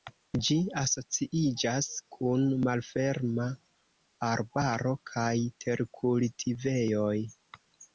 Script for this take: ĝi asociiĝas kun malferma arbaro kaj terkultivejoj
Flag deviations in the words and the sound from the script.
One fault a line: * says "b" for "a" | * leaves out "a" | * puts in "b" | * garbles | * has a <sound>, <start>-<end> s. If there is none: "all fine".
all fine